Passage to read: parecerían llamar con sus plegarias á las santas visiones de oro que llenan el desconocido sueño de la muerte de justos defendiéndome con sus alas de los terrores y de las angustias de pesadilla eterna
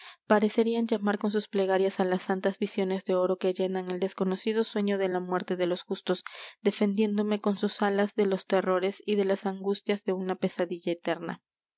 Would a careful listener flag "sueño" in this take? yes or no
no